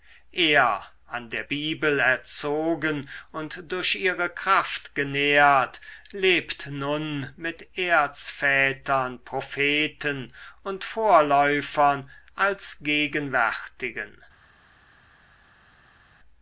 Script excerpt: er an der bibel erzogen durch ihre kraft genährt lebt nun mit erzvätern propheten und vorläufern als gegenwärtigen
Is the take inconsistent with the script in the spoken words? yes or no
yes